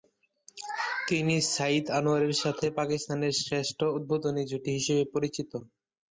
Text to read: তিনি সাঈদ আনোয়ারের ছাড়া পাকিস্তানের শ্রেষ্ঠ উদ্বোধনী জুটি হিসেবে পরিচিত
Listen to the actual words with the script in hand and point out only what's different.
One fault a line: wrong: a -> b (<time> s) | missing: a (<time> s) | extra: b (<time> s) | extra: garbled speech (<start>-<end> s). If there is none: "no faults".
wrong: ছাড়া -> সাথে (2.4 s)